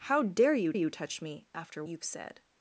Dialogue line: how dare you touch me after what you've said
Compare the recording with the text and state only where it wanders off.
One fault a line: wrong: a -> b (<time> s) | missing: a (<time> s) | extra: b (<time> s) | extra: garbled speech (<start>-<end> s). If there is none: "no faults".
extra: you (0.7 s)
missing: what (1.8 s)